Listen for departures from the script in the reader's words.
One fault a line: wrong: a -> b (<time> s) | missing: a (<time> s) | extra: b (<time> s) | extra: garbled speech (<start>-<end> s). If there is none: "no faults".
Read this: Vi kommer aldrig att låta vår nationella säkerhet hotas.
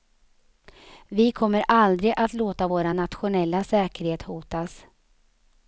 no faults